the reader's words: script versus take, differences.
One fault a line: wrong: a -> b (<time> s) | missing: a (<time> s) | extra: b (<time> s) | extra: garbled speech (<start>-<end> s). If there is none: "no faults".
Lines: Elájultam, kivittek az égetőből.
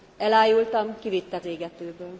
missing: az (1.4 s)